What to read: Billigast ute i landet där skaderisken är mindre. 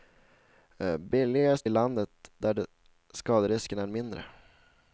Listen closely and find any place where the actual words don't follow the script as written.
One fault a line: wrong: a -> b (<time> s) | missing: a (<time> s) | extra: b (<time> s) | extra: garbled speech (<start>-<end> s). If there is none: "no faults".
missing: ute (1.7 s)